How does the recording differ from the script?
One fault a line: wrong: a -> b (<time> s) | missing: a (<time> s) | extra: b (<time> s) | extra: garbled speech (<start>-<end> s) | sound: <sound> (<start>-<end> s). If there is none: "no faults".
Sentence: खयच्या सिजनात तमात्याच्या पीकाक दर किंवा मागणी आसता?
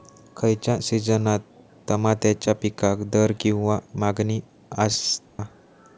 sound: dropout (5.2-5.4 s)